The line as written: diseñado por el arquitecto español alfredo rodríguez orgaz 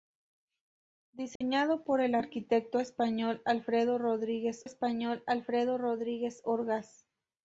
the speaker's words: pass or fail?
fail